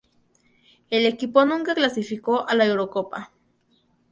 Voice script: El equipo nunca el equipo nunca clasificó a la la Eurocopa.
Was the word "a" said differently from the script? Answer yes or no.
no